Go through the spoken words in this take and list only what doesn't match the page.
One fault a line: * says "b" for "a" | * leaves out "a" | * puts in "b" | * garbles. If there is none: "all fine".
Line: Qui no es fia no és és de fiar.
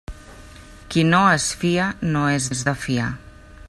all fine